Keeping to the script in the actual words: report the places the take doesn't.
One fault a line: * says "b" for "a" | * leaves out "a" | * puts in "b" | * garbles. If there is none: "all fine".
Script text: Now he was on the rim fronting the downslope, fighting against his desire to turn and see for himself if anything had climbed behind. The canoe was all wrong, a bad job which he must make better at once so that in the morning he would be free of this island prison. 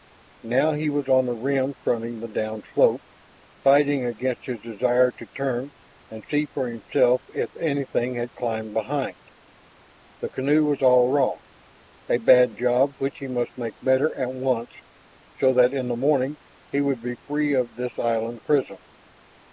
all fine